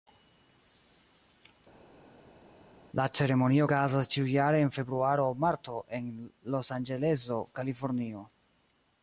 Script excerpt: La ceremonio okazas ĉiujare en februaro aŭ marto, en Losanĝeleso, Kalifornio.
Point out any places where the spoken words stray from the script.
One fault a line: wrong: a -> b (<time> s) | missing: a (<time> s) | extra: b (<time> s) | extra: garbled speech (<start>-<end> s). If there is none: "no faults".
no faults